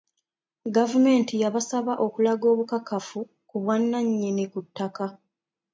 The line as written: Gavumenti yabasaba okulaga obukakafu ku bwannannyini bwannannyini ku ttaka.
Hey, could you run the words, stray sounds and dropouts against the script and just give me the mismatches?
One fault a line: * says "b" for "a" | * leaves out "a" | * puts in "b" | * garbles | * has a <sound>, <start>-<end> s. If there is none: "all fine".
* leaves out "bwannannyini"